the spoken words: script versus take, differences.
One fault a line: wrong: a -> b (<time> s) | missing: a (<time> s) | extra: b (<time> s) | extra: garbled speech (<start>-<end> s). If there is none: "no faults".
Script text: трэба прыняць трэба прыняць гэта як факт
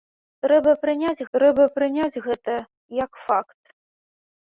no faults